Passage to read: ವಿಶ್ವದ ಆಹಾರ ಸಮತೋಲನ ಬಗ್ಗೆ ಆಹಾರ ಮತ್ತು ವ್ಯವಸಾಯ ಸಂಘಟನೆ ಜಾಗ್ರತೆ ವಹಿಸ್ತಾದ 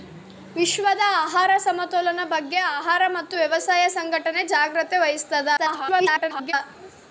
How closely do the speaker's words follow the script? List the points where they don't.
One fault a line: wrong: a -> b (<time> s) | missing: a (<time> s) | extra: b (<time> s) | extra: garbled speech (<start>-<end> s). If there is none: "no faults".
extra: garbled speech (5.6-6.5 s)